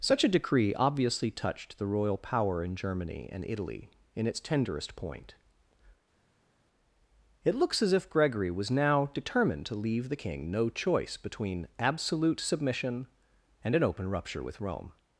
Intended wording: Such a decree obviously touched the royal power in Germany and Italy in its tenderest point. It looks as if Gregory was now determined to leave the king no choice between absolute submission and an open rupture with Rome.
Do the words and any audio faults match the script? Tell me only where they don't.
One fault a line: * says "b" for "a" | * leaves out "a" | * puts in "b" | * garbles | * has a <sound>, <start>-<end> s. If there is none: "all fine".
all fine